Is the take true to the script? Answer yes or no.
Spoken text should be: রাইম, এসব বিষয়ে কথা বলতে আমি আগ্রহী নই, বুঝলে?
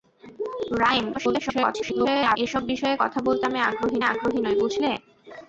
no